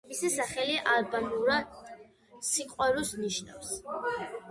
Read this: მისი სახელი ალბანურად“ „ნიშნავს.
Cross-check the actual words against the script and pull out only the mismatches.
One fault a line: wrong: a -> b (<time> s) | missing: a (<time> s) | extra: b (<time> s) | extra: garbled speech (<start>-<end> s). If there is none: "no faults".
extra: სიყვარულს (2.5 s)